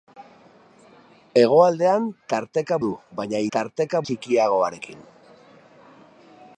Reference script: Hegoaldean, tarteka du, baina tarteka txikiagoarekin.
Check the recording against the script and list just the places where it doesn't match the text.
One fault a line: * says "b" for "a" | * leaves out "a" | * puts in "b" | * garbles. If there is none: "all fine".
all fine